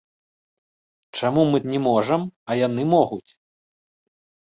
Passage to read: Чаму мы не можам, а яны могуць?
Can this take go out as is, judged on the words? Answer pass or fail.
pass